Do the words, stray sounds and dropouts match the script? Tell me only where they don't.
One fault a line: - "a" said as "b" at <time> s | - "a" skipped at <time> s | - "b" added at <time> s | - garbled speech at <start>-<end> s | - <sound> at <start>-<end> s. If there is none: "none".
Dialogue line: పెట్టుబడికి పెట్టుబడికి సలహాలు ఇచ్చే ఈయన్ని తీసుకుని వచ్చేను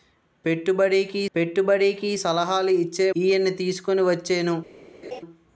- laugh at 5.0-5.2 s